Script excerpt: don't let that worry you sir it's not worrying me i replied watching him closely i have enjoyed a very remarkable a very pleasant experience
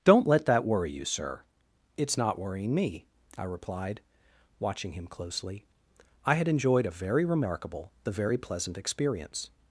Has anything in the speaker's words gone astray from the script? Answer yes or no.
yes